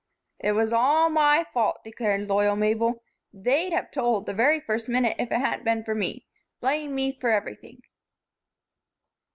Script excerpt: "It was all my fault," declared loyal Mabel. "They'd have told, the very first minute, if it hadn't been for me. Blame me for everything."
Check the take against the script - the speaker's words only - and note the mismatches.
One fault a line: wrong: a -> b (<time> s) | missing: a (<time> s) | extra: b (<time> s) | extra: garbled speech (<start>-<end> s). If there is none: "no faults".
no faults